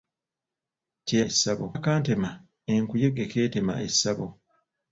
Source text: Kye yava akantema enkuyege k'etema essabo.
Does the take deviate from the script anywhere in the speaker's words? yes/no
yes